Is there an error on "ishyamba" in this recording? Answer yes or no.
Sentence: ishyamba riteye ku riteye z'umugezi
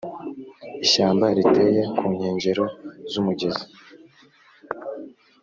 no